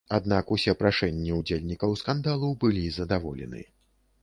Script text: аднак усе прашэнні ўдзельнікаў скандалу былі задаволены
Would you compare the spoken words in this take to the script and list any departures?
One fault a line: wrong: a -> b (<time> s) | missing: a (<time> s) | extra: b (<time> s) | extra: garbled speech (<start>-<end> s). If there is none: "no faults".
no faults